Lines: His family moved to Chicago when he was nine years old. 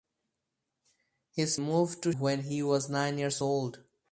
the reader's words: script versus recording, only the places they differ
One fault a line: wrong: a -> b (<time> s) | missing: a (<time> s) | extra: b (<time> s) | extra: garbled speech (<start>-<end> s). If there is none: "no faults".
missing: family (1.6 s)
missing: Chicago (2.1 s)